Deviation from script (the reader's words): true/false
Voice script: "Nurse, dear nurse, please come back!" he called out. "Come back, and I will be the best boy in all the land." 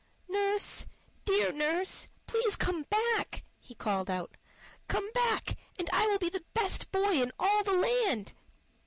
false